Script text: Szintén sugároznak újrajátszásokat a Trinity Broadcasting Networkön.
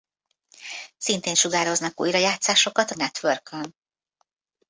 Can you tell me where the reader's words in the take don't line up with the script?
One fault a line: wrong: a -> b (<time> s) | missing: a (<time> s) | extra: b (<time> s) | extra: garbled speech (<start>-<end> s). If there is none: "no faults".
missing: Trinity Broadcasting (2.9 s)